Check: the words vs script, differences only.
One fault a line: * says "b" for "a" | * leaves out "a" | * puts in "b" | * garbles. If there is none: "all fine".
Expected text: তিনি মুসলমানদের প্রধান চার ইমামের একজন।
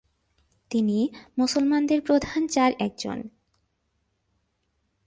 * leaves out "ইমামের"